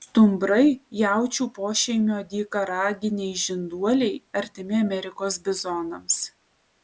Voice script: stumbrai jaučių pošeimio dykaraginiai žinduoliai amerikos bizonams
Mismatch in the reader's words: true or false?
true